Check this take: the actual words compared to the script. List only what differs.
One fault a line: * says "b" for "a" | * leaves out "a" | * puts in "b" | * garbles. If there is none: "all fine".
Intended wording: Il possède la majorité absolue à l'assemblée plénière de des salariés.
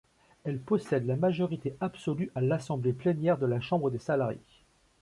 * says "Elle" for "Il"
* puts in "la Chambre"